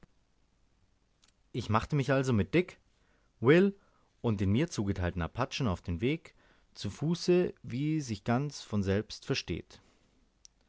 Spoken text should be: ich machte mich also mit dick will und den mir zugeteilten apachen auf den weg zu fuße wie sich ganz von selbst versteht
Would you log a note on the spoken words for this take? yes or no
no